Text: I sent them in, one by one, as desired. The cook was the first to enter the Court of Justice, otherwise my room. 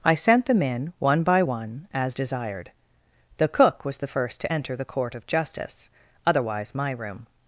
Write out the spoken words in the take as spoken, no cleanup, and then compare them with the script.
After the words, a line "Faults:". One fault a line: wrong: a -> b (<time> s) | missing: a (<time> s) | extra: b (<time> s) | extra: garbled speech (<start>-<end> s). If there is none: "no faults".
I sent them in, one by one, as desired. The cook was the first to enter the Court of Justice, otherwise my room.
Faults:
no faults